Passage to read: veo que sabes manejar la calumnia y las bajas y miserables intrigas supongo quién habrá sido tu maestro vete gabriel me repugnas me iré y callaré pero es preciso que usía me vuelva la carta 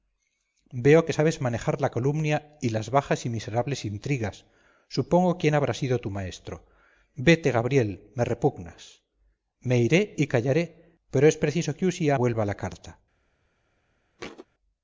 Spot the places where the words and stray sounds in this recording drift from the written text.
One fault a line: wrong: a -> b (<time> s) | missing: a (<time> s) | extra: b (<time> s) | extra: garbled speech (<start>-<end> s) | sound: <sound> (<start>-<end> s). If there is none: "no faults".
missing: me (12.2 s)
sound: thud (14.2-14.5 s)